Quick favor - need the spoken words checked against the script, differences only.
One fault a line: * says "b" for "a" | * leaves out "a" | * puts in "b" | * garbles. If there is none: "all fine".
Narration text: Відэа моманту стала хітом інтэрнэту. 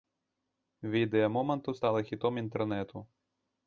all fine